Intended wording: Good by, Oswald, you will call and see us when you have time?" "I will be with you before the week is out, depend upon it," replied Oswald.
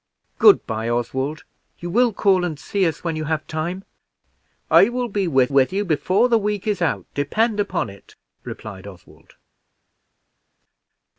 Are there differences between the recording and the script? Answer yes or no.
yes